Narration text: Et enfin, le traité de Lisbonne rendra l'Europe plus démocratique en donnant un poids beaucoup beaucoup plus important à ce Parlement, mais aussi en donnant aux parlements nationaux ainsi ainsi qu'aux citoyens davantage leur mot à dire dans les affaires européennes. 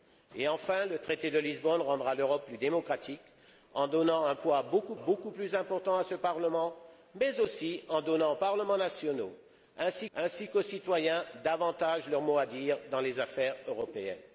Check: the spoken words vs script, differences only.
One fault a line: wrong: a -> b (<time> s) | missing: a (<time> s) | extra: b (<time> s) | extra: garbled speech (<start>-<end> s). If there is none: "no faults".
no faults